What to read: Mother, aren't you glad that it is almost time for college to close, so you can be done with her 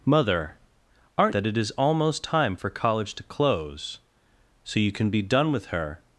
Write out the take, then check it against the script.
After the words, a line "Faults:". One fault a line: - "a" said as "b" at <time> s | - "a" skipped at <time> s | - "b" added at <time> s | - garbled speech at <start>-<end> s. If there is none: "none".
Mother, aren't that it is almost time for college to close, so you can be done with her
Faults:
- "you glad" skipped at 1.3 s